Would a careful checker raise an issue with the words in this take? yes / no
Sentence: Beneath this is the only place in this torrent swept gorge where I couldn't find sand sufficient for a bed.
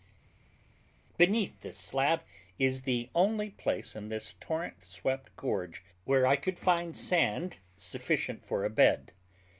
yes